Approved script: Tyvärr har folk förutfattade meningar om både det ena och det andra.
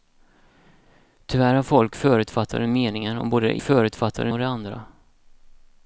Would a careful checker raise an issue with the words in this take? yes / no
yes